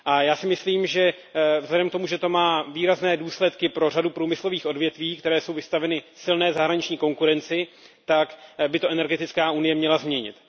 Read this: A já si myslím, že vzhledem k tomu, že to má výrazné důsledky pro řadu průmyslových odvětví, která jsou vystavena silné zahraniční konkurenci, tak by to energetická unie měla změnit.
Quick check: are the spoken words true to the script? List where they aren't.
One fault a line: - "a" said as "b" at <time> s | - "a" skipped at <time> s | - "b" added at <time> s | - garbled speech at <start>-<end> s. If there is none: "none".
none